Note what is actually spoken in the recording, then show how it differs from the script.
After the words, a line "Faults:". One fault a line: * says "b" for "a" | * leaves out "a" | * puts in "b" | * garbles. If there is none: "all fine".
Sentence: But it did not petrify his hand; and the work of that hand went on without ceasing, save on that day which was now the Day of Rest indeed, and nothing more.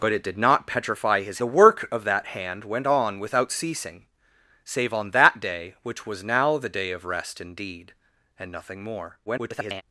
But it did not petrify his the work of that hand went on without ceasing, save on that day which was now the Day of Rest indeed, and nothing more. [garbled]
Faults:
* leaves out "hand and"
* garbles